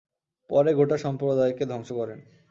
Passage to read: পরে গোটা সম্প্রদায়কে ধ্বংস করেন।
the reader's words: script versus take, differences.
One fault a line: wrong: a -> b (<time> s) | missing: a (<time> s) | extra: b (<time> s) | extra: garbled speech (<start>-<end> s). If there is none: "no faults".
no faults